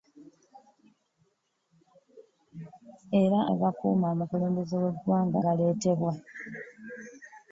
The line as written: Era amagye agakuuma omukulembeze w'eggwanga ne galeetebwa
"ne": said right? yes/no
no